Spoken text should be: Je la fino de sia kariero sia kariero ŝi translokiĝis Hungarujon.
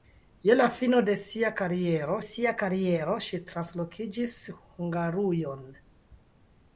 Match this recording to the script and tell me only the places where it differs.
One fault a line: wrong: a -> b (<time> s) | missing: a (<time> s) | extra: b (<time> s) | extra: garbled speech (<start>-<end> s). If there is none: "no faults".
no faults